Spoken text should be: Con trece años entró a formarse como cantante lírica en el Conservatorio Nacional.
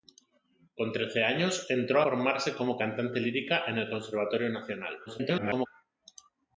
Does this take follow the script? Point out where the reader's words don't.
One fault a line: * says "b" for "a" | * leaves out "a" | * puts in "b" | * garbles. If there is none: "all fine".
* leaves out "a"
* garbles